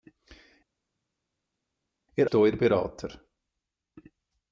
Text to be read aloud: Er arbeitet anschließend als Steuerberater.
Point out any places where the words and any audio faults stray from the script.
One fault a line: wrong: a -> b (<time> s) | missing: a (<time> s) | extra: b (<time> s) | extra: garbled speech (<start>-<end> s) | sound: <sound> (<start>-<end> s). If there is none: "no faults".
missing: arbeitet anschließend als (2.3 s)